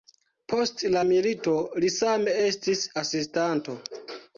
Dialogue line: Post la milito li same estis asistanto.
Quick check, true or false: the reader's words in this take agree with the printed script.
true